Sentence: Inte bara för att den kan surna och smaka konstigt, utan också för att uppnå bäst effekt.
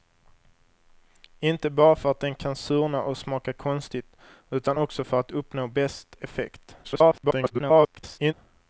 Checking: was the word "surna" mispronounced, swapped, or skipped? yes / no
no